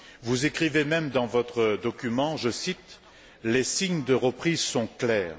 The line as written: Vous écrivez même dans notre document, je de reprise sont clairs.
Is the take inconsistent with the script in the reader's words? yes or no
yes